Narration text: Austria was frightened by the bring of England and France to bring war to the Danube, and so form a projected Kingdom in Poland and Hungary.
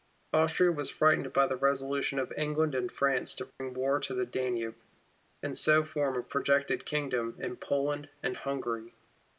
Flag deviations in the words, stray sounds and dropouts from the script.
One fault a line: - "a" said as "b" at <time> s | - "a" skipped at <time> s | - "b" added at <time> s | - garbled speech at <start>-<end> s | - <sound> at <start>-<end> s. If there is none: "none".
- "bring" said as "resolution" at 1.6 s
- dropout at 3.5-3.6 s